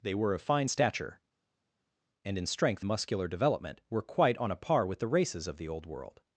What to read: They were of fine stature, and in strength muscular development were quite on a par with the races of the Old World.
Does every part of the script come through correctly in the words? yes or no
yes